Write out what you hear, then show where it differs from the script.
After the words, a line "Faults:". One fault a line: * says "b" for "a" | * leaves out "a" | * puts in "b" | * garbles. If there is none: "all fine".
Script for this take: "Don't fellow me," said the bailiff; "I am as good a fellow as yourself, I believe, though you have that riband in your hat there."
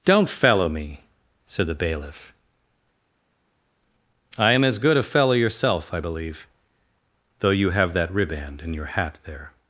"Don't fellow me," said the bailiff; "I am as good a fellow yourself, I believe, though you have that riband in your hat there."
Faults:
* leaves out "as"